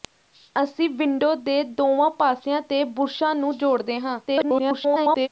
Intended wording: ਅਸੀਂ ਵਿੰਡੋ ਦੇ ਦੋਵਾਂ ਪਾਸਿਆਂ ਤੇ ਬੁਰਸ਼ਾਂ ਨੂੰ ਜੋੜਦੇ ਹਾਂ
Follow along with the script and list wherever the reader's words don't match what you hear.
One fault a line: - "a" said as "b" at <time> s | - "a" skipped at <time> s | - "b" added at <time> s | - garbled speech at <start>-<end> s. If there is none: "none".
- garbled speech at 4.3-5.3 s